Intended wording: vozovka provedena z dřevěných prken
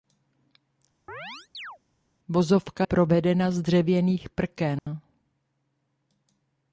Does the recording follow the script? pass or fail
pass